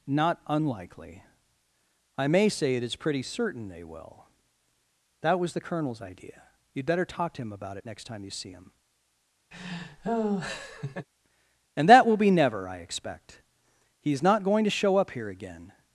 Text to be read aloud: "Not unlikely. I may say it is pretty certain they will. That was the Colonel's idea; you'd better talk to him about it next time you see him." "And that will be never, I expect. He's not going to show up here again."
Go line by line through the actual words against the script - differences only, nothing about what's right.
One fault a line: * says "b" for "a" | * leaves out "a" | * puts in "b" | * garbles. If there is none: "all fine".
all fine